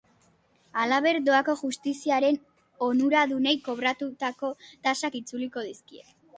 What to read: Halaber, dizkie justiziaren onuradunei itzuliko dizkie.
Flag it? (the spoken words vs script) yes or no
yes